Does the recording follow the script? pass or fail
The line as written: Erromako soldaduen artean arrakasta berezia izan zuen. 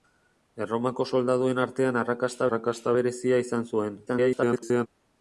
fail